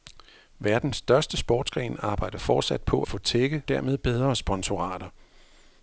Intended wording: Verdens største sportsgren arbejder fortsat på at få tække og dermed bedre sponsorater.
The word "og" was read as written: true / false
false